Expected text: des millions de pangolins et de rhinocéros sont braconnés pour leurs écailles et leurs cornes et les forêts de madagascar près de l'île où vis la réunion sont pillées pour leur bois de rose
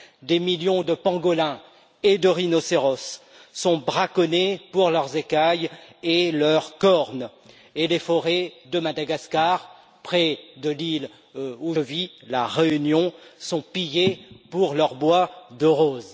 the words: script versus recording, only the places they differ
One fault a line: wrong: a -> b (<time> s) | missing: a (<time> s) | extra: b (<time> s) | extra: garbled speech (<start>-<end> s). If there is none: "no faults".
no faults